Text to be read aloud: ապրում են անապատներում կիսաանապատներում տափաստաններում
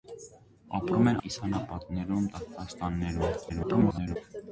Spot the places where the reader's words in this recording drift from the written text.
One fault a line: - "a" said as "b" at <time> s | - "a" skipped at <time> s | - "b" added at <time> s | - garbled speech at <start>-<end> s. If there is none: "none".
- "անապատներում" skipped at 1.2 s
- garbled speech at 3.5-4.2 s